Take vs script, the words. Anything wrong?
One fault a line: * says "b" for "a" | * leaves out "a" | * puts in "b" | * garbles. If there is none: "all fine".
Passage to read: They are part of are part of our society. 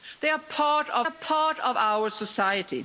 all fine